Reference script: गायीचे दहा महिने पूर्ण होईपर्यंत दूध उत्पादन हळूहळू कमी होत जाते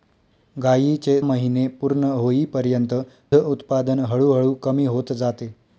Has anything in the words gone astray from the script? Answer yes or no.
yes